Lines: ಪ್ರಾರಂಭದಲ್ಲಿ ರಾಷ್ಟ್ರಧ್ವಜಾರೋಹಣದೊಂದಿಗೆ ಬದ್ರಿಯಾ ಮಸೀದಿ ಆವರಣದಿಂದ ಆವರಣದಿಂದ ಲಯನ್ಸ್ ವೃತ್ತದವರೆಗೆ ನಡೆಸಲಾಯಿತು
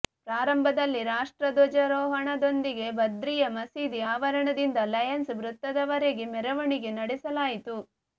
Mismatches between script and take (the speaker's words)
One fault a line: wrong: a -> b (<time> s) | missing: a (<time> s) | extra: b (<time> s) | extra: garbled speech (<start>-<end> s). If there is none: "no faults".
missing: ಆವರಣದಿಂದ (4.8 s)
extra: ಮೆರವಣಿಗೆ (6.4 s)